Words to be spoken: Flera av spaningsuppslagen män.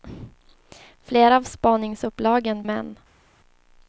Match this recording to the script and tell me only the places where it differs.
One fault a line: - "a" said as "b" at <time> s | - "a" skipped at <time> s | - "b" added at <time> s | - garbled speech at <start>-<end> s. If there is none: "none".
none